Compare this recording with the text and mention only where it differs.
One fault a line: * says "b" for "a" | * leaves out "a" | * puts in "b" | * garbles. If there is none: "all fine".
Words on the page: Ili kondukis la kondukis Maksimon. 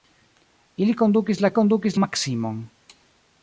all fine